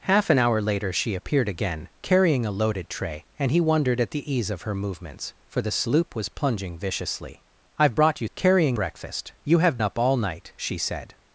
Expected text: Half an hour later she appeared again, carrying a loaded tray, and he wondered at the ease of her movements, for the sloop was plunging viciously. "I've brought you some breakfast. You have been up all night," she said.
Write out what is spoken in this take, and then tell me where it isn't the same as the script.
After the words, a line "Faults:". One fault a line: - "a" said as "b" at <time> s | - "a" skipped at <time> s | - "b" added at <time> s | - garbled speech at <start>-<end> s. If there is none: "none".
Half an hour later she appeared again, carrying a loaded tray, and he wondered at the ease of her movements, for the sloop was plunging viciously. "I've brought you carrying breakfast. You have up all night," she said.
Faults:
- "some" said as "carrying" at 8.3 s
- "been" skipped at 9.8 s